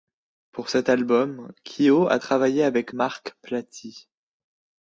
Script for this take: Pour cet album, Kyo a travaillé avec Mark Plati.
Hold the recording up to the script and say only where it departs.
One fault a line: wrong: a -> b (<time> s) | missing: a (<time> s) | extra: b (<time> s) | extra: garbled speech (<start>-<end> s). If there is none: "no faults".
no faults